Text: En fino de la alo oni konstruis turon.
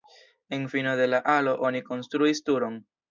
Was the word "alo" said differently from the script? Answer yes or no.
no